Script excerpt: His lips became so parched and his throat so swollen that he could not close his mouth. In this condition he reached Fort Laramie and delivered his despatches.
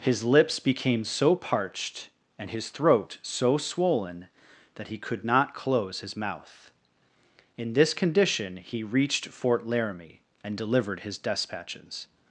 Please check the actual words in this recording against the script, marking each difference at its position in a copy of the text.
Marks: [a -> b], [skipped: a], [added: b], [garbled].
His lips became so parched and his throat so swollen that he could not close his mouth. In this condition he reached Fort Laramie and delivered his despatches.